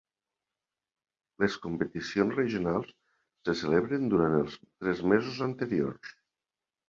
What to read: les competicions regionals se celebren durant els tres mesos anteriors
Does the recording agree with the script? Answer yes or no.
yes